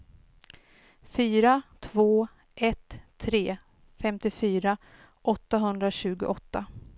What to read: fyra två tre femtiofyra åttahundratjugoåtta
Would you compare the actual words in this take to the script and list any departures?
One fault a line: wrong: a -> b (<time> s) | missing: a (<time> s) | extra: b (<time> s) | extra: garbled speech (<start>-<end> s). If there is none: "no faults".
extra: ett (2.5 s)